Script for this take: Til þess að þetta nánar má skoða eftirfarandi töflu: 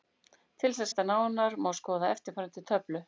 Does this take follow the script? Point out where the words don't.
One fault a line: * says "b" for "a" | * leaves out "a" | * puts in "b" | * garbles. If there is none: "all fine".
all fine